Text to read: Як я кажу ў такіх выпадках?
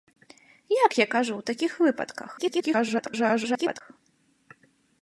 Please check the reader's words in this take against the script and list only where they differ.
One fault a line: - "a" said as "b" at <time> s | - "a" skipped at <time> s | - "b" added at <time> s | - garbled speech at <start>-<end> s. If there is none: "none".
- garbled speech at 2.4-3.8 s